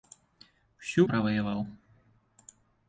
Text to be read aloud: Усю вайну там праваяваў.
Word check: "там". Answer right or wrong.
wrong